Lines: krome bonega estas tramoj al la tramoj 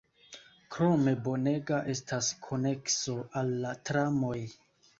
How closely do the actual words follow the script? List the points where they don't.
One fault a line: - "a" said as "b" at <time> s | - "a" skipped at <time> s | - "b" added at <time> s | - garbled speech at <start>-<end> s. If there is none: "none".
- "tramoj" said as "konekso" at 2.5 s